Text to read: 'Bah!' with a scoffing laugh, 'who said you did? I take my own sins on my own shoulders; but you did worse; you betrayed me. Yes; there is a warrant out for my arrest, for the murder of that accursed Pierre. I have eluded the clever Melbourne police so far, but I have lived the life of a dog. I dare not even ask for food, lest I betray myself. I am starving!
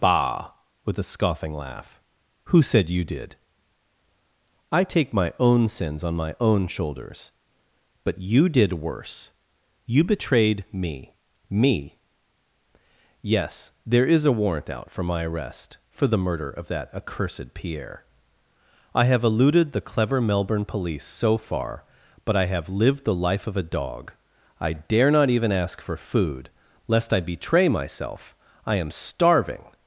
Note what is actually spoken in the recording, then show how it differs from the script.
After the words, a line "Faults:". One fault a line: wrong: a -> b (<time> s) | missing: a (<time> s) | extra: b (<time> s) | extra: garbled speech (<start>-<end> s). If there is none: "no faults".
'Bah!' with a scoffing laugh, 'who said you did? I take my own sins on my own shoulders; but you did worse; you betrayed me me. Yes; there is a warrant out for my arrest, for the murder of that accursed Pierre. I have eluded the clever Melbourne police so far, but I have lived the life of a dog. I dare not even ask for food, lest I betray myself. I am starving!
Faults:
extra: me (11.5 s)